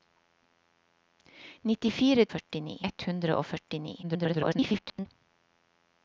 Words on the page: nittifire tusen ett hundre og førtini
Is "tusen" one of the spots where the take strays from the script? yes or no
yes